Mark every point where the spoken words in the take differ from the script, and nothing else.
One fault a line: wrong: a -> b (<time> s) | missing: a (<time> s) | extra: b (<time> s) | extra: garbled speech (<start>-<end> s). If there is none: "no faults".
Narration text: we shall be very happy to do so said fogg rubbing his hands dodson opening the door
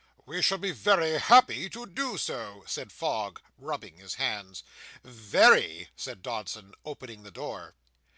extra: very said (5.0 s)